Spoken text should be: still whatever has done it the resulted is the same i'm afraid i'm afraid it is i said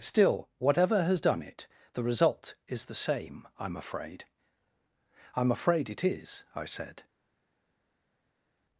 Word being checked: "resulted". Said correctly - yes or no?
no